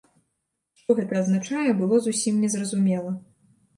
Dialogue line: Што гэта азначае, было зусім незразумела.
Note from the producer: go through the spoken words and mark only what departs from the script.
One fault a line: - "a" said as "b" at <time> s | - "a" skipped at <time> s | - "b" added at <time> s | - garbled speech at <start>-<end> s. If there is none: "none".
none